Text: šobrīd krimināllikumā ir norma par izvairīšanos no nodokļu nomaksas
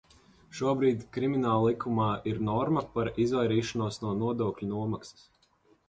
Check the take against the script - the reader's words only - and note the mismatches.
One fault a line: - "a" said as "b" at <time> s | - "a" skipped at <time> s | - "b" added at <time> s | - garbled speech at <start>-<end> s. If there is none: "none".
none